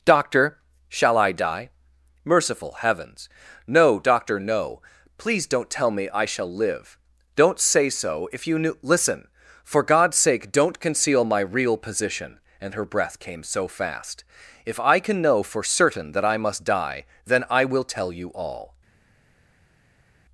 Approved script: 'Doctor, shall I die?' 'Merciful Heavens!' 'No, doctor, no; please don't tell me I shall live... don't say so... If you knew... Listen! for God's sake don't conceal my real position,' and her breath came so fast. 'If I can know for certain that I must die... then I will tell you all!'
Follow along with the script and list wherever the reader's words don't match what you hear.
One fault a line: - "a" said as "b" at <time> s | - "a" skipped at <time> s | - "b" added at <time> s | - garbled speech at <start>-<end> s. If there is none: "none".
none